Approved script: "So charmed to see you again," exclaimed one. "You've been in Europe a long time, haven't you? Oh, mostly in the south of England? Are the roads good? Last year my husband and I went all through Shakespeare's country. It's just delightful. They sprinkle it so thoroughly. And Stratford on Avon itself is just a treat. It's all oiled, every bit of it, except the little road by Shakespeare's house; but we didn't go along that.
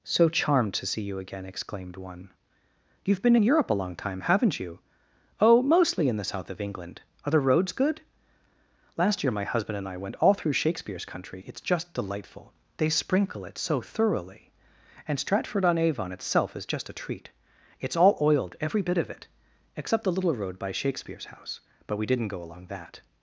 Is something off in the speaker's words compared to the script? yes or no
no